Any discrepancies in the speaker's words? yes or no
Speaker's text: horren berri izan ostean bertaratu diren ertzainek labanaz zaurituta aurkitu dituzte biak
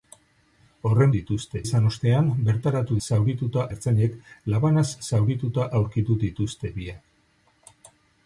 yes